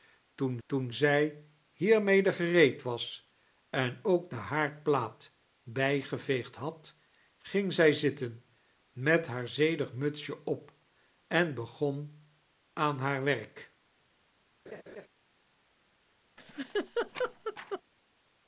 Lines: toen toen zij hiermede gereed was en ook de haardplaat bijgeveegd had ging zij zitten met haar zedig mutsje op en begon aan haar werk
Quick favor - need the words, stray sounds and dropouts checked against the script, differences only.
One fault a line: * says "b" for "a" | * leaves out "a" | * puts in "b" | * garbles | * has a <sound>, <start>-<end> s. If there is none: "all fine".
* has a laugh, 14.7-15.1 s
* has a laugh, 16.4-17.8 s